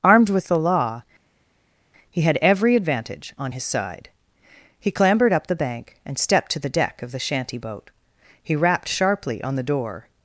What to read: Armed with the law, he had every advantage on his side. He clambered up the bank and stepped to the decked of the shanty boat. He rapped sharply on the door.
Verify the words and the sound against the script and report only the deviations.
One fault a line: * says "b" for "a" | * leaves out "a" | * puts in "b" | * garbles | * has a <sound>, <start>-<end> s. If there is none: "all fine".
* says "deck" for "decked"